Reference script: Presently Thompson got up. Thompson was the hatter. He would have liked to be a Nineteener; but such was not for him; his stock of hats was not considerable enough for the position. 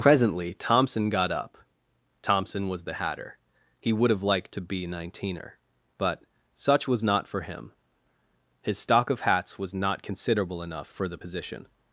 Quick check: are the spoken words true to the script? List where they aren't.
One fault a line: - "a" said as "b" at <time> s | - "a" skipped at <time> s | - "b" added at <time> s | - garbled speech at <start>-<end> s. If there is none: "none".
- "a" skipped at 4.9 s